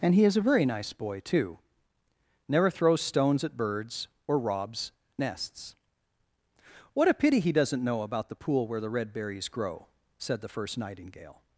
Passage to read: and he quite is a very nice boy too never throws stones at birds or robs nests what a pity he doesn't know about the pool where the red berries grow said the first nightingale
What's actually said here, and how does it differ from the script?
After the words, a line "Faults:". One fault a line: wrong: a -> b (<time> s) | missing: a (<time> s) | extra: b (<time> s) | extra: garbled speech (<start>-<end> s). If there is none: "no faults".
and he is a very nice boy too never throws stones at birds or robs nests what a pity he doesn't know about the pool where the red berries grow said the first nightingale
Faults:
missing: quite (0.2 s)